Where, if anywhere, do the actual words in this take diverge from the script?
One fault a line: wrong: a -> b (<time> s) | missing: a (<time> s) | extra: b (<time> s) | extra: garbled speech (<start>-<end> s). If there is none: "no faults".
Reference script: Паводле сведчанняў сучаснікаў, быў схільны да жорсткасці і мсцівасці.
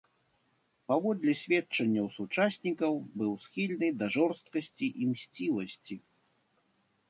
no faults